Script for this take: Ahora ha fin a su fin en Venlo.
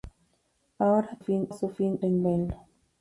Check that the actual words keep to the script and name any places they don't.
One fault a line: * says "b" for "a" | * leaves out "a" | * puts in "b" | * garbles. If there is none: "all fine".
all fine